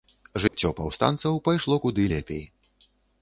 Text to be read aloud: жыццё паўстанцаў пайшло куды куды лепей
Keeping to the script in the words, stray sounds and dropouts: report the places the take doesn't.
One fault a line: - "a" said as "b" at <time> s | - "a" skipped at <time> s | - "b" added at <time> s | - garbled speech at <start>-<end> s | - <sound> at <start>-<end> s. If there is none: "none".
- dropout at 0.5-0.5 s
- "куды" skipped at 2.1 s